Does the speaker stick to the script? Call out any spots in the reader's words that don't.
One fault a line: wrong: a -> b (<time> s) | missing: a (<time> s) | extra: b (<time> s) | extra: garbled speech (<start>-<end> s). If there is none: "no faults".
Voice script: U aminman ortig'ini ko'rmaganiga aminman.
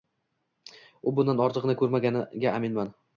wrong: aminman -> bundan (1.2 s)